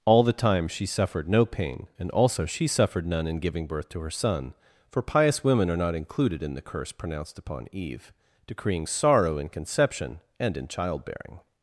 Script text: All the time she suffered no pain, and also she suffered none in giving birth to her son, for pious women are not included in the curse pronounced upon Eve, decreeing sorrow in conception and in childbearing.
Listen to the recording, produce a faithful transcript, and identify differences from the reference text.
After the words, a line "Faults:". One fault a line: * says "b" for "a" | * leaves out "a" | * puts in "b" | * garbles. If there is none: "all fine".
All the time she suffered no pain, and also she suffered none in giving birth to her son, for pious women are not included in the curse pronounced upon Eve, decreeing sorrow in conception and in childbearing.
Faults:
all fine